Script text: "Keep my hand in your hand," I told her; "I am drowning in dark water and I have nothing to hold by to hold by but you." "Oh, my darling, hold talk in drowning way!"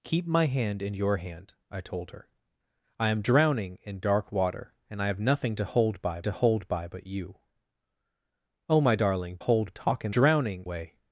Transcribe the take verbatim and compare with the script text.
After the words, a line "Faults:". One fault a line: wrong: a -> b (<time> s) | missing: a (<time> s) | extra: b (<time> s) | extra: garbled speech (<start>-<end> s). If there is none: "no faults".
"Keep my hand in your hand," I told her; "I am drowning in dark water and I have nothing to hold by to hold by but you." "Oh, my darling, hold talk in drowning way!"
Faults:
no faults